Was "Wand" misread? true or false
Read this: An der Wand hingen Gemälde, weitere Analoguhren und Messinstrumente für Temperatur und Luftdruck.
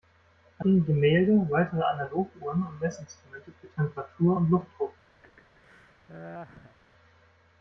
true